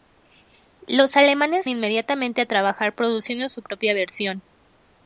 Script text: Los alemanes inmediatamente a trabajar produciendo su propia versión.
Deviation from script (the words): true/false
false